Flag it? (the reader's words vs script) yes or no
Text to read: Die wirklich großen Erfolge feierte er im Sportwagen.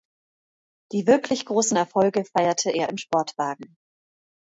no